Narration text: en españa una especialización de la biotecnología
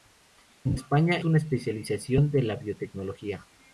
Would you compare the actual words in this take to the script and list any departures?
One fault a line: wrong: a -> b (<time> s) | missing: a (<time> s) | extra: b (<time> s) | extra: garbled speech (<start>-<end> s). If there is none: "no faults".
no faults